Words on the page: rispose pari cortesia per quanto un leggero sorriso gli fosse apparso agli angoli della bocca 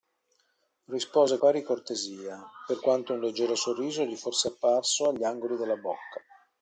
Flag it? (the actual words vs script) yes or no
no